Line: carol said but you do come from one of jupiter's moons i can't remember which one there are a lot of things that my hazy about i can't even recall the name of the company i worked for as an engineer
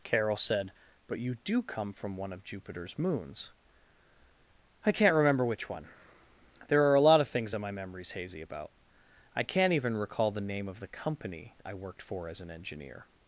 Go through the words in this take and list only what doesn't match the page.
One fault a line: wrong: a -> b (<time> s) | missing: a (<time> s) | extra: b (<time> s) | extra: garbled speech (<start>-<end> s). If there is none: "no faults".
extra: memory's (7.7 s)